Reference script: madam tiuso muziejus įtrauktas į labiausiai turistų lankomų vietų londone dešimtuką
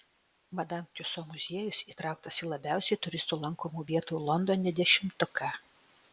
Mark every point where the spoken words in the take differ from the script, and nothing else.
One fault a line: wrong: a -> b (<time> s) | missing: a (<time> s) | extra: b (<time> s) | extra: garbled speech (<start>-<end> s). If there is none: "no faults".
no faults